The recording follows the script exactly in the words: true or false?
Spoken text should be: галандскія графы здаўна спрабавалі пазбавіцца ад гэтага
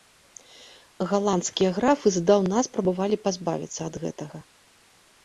true